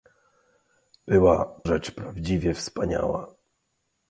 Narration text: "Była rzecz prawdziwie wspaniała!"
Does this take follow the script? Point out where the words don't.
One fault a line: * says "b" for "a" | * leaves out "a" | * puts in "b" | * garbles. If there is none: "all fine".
all fine